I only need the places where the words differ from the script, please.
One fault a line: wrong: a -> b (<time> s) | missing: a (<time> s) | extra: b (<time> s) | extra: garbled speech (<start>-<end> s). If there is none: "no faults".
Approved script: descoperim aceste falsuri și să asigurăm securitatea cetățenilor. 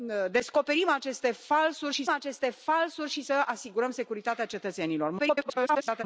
extra: aceste falsuri și (2.1 s)
extra: garbled speech (5.2-6.0 s)